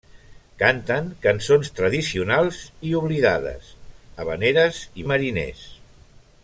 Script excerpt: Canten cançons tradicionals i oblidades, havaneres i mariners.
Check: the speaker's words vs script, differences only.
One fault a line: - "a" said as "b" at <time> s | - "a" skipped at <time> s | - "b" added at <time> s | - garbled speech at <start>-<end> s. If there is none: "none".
none